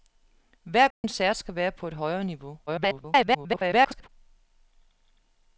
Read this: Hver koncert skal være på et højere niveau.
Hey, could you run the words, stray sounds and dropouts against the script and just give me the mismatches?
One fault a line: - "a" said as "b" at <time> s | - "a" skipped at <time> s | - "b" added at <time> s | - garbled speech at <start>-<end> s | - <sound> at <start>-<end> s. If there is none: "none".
- dropout at 0.9-1.0 s
- garbled speech at 2.7-4.1 s